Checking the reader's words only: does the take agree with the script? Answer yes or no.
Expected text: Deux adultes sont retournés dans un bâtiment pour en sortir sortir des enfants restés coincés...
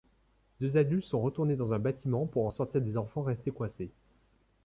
no